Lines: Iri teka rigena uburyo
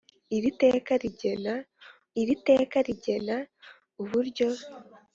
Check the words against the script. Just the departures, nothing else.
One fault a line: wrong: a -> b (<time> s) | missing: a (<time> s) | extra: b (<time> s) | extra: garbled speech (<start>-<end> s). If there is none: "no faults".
extra: iri teka rigena (2.2 s)